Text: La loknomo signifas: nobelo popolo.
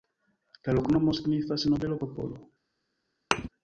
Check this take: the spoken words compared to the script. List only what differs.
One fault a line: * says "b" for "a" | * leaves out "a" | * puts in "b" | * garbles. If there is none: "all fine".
all fine